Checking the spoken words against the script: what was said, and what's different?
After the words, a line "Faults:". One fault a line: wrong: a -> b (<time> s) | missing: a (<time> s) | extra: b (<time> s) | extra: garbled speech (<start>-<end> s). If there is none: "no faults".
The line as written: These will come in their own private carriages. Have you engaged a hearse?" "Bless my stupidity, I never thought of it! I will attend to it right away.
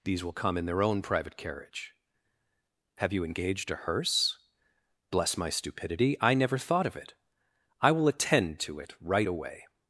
These will come in their own private carriage. Have you engaged a hearse?" "Bless my stupidity, I never thought of it! I will attend to it right away.
Faults:
wrong: carriages -> carriage (1.4 s)